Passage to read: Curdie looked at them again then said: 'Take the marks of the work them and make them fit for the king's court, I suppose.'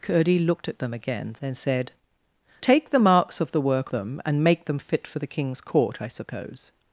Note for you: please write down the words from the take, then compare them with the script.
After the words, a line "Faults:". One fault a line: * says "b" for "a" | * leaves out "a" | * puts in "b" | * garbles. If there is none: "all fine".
Curdie looked at them again then said: 'Take the marks of the work them and make them fit for the king's court, I suppose.'
Faults:
all fine